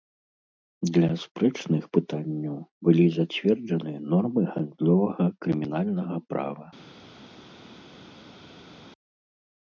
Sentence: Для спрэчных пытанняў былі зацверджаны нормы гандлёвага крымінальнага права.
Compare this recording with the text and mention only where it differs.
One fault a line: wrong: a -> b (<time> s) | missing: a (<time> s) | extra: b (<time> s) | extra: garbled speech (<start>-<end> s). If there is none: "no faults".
no faults